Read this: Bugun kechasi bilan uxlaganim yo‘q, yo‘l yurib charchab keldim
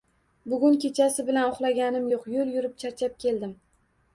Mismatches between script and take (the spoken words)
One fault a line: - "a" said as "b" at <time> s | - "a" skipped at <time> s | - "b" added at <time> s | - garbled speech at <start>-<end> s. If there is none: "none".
none